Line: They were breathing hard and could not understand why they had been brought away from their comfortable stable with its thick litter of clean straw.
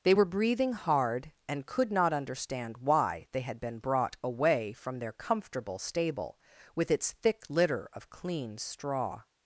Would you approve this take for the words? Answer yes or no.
yes